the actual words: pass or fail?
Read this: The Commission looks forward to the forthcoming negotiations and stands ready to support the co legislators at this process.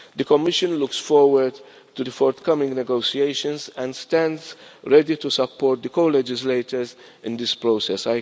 fail